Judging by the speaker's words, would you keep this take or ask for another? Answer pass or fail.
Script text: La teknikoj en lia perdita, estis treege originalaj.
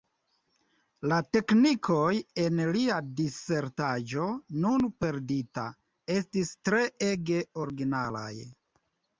fail